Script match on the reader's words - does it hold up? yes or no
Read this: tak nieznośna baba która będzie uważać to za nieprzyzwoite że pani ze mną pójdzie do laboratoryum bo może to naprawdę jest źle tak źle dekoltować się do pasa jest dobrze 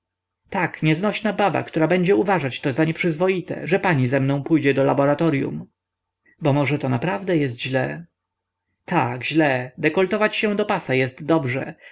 yes